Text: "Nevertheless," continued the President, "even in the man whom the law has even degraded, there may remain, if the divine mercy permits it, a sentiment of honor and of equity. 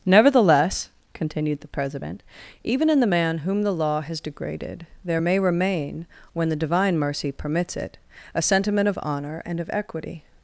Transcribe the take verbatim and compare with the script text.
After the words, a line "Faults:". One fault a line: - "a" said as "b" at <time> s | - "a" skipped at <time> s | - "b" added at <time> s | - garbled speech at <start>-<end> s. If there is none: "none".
"Nevertheless," continued the President, "even in the man whom the law has degraded, there may remain, when the divine mercy permits it, a sentiment of honor and of equity.
Faults:
- "even" skipped at 4.2 s
- "if" said as "when" at 6.3 s